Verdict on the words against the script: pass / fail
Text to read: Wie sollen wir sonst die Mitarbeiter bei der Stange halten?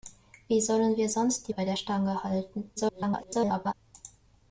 fail